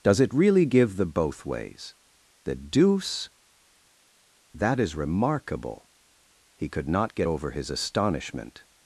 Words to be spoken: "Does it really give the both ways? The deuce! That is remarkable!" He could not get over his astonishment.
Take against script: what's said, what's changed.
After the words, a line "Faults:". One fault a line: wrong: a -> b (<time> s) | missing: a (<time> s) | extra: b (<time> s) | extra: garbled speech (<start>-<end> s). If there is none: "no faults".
"Does it really give the both ways? The deuce! That is remarkable!" He could not get over his astonishment.
Faults:
no faults